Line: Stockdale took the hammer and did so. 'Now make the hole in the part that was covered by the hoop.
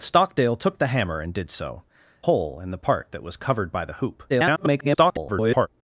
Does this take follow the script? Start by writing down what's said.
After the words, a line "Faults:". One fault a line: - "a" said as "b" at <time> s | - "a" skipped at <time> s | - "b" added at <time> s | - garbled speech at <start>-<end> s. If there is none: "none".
Stockdale took the hammer and did so. 'Hole in the part that was covered by the hoop. [garbled]
Faults:
- "Now make the" skipped at 1.8 s
- garbled speech at 4.3-5.7 s